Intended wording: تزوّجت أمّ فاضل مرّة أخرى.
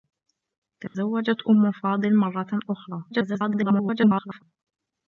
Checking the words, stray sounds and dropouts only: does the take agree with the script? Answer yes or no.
no